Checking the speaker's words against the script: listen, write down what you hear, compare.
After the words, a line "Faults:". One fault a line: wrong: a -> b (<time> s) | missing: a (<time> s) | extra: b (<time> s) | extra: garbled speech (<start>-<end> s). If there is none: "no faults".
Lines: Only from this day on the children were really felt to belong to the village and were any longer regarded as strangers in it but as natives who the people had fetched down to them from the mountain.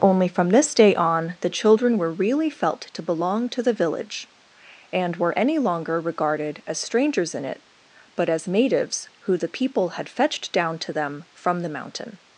Only from this day on the children were really felt to belong to the village and were any longer regarded as strangers in it but as natives who the people had fetched down to them from the mountain.
Faults:
no faults